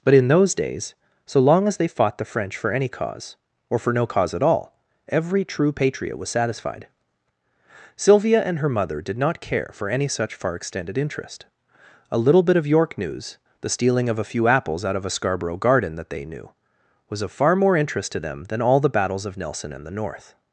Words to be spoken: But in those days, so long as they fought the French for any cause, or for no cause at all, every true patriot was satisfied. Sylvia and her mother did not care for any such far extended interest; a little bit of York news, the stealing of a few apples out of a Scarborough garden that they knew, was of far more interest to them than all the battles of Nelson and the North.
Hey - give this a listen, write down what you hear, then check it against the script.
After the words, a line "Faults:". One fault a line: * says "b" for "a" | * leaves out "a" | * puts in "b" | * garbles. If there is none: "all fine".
But in those days, so long as they fought the French for any cause, or for no cause at all, every true patriot was satisfied. Sylvia and her mother did not care for any such far extended interest; a little bit of York news, the stealing of a few apples out of a Scarborough garden that they knew, was of far more interest to them than all the battles of Nelson and the North.
Faults:
all fine